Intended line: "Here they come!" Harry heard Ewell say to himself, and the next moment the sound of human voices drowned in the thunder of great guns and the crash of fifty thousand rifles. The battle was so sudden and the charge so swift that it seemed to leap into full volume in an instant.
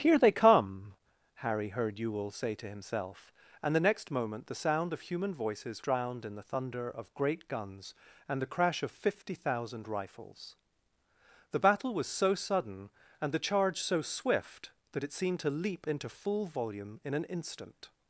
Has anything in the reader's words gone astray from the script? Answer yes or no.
no